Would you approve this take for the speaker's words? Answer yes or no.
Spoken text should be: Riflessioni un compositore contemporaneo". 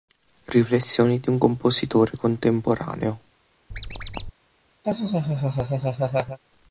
no